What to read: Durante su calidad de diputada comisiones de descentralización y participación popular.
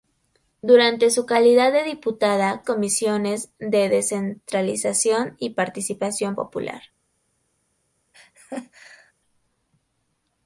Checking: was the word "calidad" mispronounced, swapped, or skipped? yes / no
no